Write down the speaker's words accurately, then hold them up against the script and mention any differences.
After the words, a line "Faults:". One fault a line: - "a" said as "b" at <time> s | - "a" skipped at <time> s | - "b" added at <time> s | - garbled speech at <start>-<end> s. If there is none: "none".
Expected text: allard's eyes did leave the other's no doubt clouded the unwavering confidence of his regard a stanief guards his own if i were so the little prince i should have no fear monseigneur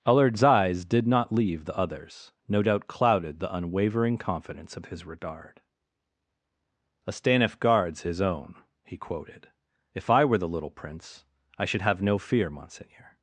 allard's eyes did not leave the other's no doubt clouded the unwavering confidence of his regard a stanief guards his own he quoted if i were the little prince i should have no fear monseigneur
Faults:
- "not" added at 1.1 s
- "he quoted" added at 8.8 s
- "so" skipped at 10.4 s